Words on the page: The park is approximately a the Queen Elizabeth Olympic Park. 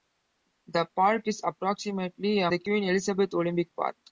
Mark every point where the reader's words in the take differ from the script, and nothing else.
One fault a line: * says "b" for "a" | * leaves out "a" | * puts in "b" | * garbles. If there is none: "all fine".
all fine